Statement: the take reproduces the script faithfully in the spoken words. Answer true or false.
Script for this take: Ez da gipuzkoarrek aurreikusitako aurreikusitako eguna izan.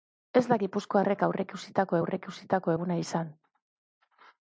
true